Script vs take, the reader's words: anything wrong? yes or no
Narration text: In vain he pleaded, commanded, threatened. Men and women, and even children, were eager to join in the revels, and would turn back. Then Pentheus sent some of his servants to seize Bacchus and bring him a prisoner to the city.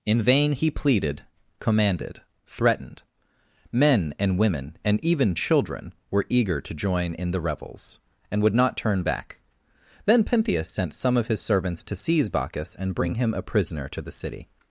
yes